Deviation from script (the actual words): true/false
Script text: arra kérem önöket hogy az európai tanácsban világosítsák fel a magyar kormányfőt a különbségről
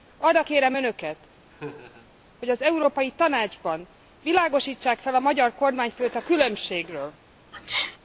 false